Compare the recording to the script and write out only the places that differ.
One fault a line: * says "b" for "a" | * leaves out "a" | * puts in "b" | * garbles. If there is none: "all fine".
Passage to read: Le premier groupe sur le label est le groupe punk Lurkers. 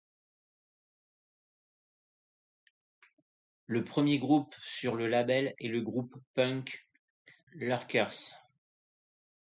all fine